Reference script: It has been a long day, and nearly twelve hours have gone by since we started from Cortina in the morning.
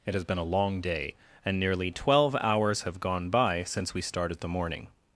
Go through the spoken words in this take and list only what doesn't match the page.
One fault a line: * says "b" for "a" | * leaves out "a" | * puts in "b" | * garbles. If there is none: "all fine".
* leaves out "from Cortina in"